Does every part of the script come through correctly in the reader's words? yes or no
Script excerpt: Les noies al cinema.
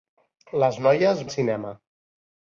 yes